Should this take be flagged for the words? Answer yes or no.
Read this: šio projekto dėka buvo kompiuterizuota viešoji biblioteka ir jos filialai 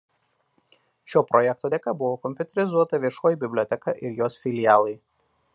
no